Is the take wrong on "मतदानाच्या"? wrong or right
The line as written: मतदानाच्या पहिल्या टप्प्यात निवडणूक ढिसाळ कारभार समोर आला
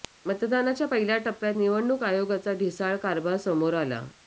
right